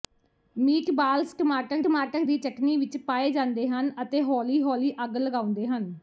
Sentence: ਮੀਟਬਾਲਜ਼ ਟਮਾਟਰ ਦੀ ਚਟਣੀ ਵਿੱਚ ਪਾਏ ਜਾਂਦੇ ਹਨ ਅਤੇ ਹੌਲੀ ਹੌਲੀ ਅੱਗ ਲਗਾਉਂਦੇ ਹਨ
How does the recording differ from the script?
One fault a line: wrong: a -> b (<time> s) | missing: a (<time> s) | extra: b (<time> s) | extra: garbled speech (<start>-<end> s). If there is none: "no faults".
extra: ਟਮਾਟਰ (1.8 s)